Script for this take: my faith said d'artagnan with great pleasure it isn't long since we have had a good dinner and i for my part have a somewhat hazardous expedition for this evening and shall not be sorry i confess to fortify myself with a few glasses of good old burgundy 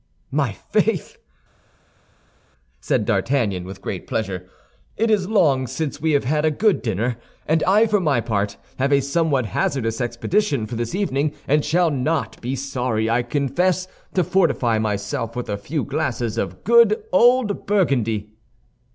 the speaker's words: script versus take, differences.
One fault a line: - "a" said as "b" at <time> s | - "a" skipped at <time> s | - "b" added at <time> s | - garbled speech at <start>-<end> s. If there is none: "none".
- "isn't" said as "is" at 5.1 s